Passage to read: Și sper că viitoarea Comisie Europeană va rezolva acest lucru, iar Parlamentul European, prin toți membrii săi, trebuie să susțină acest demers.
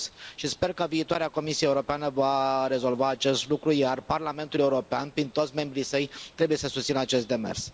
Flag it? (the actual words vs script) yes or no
no